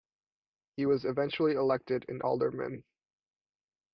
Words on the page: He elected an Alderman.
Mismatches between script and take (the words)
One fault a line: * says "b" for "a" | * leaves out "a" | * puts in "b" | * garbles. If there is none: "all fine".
* puts in "was eventually"